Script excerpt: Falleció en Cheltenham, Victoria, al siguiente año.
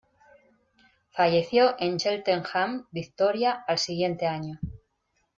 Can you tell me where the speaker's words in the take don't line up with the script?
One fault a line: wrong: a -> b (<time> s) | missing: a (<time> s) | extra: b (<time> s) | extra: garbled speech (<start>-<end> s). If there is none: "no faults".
no faults